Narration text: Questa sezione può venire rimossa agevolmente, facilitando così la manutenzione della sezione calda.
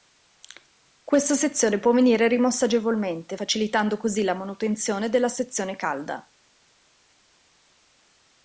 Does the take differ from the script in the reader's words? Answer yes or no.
no